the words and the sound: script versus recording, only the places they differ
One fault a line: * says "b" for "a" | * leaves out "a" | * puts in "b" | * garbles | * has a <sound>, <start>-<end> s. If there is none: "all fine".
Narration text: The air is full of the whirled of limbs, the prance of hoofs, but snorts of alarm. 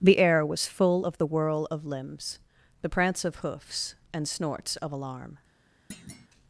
* says "was" for "is"
* says "whirl" for "whirled"
* says "and" for "but"
* has a thud, 5.9-6.3 s